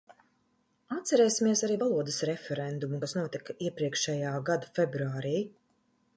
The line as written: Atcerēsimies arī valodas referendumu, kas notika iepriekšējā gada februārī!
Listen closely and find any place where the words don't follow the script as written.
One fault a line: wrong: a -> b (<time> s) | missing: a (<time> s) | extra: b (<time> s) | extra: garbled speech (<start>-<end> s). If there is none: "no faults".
no faults